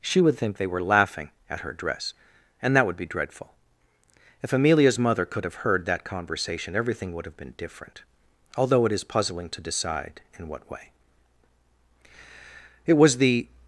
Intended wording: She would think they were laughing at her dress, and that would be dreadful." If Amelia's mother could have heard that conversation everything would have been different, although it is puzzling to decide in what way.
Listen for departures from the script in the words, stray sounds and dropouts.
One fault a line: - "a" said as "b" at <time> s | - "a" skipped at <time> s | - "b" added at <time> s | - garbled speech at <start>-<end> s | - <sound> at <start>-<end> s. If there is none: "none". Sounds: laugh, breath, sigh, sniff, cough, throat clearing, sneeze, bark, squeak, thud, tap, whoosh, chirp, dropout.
- "It was the" added at 12.8 s